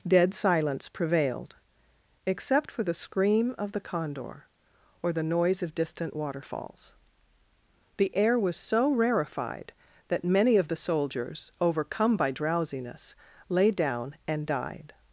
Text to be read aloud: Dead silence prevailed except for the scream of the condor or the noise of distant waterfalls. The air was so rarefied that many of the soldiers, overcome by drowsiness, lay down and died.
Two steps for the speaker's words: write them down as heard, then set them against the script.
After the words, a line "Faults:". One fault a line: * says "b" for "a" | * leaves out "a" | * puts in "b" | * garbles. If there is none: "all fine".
Dead silence prevailed except for the scream of the condor or the noise of distant waterfalls. The air was so rarefied that many of the soldiers, overcome by drowsiness, lay down and died.
Faults:
all fine